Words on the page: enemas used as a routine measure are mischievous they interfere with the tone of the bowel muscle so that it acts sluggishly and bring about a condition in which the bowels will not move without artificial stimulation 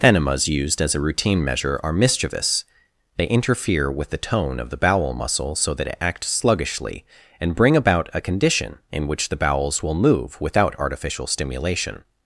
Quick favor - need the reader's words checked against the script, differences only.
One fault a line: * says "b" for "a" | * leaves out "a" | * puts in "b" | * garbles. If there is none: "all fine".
* leaves out "not"